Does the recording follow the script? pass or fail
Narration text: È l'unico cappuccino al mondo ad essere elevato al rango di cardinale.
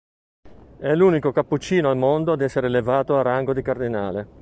pass